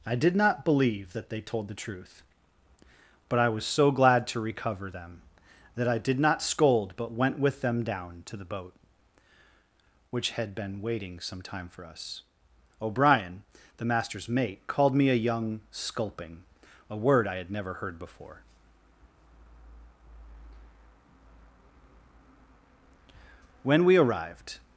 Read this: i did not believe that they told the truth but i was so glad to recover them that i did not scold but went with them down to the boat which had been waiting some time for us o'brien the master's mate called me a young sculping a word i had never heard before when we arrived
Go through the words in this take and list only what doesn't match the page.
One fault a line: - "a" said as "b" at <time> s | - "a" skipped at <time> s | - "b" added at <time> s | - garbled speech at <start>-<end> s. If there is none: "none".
none